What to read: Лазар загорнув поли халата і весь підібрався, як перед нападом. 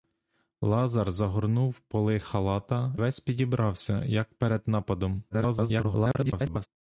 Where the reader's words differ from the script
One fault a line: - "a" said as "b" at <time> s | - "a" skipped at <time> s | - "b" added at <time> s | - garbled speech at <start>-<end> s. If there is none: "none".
- "і" skipped at 3.0 s
- garbled speech at 5.3-6.7 s